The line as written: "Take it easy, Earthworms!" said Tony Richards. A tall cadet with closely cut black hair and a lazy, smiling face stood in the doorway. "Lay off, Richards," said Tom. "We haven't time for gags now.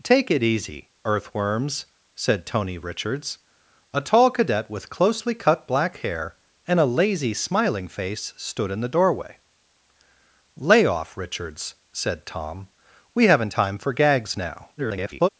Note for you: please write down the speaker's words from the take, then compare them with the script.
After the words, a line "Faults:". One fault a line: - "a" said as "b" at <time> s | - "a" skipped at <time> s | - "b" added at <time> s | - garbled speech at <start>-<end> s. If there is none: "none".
"Take it easy, Earthworms!" said Tony Richards. A tall cadet with closely cut black hair and a lazy, smiling face stood in the doorway. "Lay off, Richards," said Tom. "We haven't time for gags now. [garbled]
Faults:
- garbled speech at 14.8-15.3 s